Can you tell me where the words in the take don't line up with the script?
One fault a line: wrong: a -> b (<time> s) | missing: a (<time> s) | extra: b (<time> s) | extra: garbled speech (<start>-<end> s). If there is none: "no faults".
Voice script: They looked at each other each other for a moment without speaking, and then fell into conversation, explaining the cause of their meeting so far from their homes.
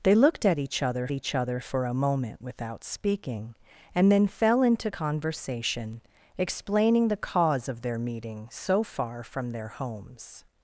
no faults